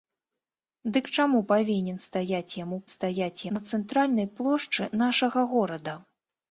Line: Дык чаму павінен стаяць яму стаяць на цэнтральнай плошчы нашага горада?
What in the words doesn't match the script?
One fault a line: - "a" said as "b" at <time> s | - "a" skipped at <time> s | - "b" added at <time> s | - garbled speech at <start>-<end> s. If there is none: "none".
none